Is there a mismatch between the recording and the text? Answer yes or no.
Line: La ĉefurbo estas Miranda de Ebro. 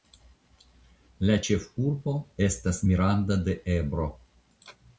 no